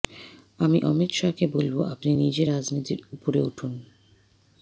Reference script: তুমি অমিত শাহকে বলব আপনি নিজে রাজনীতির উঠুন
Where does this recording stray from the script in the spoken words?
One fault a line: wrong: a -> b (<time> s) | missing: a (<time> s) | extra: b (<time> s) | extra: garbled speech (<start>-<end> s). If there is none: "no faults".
wrong: তুমি -> আমি (0.6 s)
extra: উপরে (3.1 s)